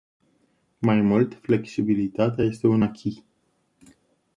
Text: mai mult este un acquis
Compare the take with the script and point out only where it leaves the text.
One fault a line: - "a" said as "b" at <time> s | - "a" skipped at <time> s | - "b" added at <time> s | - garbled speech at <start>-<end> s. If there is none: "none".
- "flexibilitatea" added at 1.4 s